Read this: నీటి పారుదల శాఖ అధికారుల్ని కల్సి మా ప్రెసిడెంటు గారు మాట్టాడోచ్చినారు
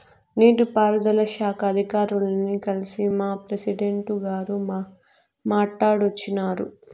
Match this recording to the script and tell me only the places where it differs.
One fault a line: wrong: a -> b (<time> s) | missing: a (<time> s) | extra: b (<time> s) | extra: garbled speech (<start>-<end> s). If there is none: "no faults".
no faults